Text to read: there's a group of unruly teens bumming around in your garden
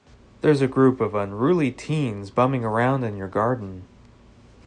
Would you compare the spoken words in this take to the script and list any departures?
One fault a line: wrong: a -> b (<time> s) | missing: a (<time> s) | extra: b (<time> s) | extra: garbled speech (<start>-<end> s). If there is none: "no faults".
no faults